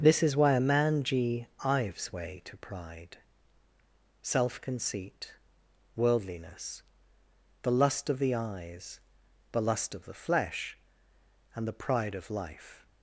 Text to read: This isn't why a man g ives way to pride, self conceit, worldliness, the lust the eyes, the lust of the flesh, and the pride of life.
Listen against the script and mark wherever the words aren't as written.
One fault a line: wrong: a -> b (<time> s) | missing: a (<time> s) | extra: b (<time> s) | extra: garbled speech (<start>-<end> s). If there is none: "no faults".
wrong: isn't -> is (0.2 s)
extra: of (8.1 s)